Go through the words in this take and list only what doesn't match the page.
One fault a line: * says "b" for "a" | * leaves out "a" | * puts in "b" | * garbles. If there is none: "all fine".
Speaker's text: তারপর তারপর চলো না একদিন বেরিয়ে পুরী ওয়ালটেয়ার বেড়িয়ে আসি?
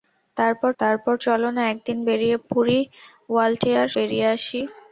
all fine